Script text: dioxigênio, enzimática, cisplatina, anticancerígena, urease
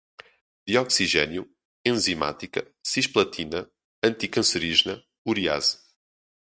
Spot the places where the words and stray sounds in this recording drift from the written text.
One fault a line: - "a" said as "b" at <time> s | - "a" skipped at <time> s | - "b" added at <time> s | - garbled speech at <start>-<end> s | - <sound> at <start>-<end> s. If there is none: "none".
none